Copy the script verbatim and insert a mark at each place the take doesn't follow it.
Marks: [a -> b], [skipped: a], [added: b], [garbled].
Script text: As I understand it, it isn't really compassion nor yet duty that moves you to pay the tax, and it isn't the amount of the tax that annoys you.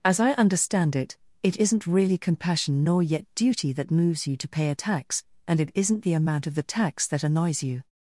As I understand it, it isn't really compassion nor yet duty that moves you to pay [the -> a] tax, and it isn't the amount of the tax that annoys you.